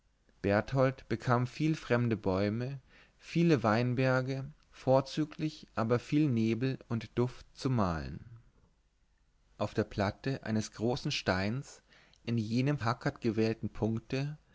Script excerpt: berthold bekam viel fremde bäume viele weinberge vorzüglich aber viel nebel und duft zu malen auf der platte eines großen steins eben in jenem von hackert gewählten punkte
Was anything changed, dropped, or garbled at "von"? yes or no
yes